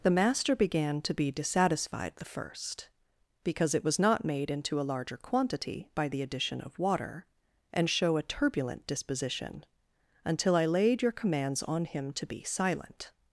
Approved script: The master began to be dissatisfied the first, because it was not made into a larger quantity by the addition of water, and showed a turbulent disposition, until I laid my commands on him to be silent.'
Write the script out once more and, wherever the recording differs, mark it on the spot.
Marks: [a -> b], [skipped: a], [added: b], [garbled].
The master began to be dissatisfied the first, because it was not made into a larger quantity by the addition of water, and [showed -> show] a turbulent disposition, until I laid [my -> your] commands on him to be silent.'